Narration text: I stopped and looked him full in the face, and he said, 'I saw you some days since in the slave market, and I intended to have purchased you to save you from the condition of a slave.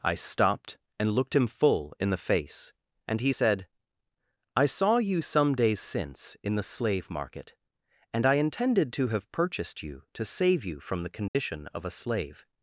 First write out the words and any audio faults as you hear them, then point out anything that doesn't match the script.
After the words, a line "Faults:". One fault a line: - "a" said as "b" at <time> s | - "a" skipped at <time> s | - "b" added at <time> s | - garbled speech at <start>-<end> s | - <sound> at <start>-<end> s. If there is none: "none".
I stopped and looked him full in the face, and he said, 'I saw you some days since in the slave market, and I intended to have purchased you to save you from the condition of a slave.
Faults:
- dropout at 11.3-11.3 s